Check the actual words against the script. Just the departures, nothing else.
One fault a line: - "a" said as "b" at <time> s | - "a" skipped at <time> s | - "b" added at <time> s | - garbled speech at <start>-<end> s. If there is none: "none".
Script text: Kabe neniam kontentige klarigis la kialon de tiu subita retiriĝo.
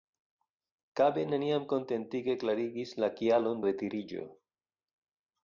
- "de tiu subita" skipped at 3.6 s